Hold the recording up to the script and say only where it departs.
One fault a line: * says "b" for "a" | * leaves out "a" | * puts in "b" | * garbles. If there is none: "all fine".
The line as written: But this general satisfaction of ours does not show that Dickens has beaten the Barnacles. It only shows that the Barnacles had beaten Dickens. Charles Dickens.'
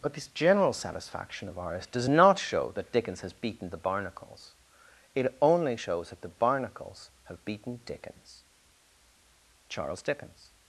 * says "have" for "had"